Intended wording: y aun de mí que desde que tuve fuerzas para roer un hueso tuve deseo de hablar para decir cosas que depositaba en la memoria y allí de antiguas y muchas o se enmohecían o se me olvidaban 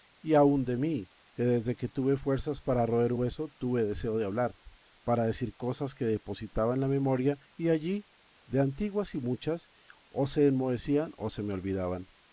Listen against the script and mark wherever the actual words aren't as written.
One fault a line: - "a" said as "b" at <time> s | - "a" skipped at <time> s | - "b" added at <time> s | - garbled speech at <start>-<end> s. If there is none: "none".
- "un" skipped at 3.1 s